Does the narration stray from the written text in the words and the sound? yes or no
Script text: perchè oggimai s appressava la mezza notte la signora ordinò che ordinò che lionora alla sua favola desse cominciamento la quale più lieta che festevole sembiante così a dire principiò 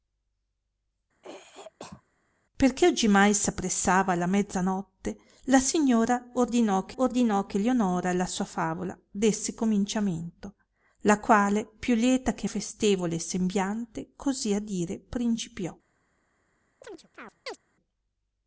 yes